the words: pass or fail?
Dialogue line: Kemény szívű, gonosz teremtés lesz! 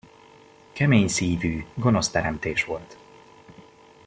fail